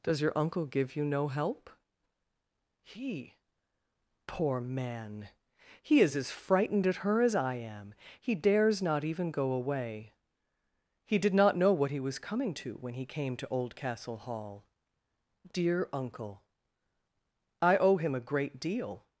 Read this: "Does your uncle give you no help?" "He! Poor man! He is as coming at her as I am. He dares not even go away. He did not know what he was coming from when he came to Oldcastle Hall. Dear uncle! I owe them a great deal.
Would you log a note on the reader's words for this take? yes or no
yes